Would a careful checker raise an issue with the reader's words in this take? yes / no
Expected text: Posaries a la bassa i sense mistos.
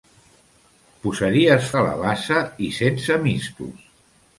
no